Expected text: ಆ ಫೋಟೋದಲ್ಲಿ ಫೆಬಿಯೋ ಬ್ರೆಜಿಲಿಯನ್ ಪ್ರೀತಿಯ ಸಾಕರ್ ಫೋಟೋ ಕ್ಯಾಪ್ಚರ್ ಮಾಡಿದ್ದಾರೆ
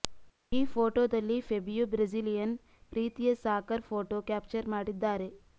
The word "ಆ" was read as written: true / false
false